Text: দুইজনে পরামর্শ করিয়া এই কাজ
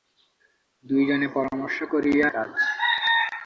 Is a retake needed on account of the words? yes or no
yes